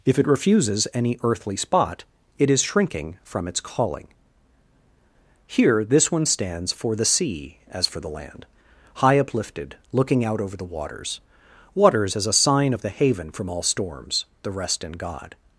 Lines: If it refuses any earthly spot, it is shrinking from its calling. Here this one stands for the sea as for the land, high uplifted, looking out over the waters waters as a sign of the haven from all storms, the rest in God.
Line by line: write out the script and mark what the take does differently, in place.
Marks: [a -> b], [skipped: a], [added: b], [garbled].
If it refuses any earthly spot, it is shrinking from its calling. Here this one stands for the sea as for the land, high uplifted, looking out over the waters waters as a sign of the haven from all storms, the rest in God.